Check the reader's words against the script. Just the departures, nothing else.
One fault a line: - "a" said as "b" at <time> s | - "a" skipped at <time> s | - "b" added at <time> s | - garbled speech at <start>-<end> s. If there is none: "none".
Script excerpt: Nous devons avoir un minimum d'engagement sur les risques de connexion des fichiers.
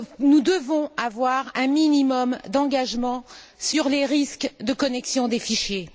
none